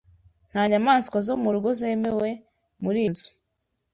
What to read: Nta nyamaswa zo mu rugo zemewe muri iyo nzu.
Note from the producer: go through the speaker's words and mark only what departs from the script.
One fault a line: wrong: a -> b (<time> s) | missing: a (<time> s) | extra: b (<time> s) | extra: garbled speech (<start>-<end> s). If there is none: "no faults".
missing: iyo (3.0 s)